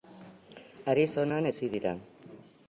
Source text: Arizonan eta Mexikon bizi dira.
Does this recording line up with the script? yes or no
no